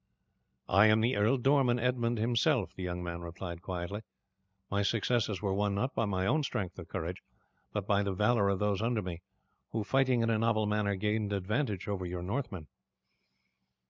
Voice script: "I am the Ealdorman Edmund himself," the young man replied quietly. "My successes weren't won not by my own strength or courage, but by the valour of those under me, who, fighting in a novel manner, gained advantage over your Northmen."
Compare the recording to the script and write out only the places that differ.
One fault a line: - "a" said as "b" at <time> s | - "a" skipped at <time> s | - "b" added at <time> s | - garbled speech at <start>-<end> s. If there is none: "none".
- "weren't" said as "were" at 5.4 s